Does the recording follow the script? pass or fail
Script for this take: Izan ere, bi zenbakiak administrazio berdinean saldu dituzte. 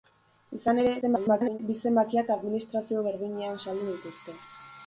fail